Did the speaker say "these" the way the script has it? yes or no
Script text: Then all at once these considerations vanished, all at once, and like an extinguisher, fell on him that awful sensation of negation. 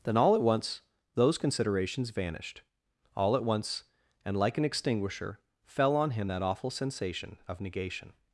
no